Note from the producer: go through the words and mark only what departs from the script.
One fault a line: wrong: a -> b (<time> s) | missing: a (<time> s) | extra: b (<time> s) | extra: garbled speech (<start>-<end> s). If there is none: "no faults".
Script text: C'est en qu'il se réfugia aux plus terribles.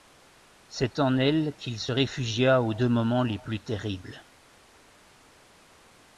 extra: elle (1.2 s)
extra: deux moments les (2.7 s)